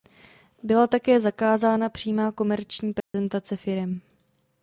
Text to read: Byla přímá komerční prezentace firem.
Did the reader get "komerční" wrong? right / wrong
right